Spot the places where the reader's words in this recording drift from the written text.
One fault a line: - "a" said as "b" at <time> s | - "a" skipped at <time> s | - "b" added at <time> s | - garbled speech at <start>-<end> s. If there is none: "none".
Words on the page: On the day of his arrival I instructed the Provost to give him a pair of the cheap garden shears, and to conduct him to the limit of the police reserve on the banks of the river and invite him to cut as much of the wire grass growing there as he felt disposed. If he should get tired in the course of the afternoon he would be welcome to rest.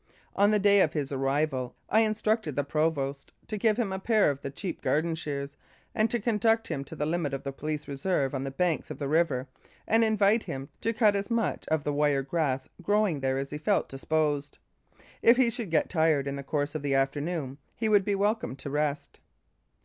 none